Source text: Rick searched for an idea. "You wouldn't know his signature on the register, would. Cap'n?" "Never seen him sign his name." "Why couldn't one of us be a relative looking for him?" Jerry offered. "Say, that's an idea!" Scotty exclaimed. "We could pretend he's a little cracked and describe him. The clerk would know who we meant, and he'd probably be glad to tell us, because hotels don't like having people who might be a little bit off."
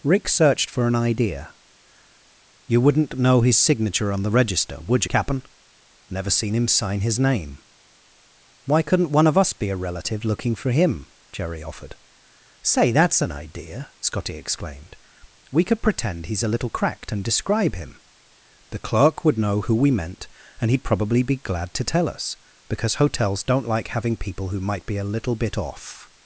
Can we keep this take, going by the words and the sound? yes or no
yes